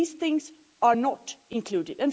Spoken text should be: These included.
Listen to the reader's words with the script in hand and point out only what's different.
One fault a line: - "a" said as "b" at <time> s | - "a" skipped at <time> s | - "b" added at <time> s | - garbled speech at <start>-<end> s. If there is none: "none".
- "things are not" added at 0.1 s